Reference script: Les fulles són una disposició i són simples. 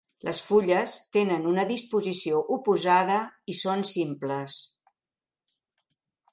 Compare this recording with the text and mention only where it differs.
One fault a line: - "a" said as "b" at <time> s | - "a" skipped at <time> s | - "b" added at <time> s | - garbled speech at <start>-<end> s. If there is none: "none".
- "són" said as "tenen" at 1.2 s
- "oposada" added at 2.6 s